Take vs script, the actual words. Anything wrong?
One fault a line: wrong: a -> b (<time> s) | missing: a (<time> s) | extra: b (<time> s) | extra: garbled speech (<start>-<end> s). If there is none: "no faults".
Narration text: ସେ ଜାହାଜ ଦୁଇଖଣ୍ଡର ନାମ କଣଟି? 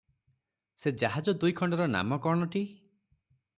no faults